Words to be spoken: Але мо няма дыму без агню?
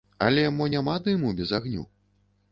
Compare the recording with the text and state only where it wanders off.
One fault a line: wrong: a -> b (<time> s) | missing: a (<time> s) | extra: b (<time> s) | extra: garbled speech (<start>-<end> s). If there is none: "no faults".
no faults